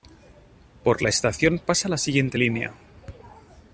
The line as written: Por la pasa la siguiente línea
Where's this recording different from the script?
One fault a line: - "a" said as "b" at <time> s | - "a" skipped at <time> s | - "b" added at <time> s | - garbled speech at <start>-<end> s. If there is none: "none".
- "estación" added at 1.1 s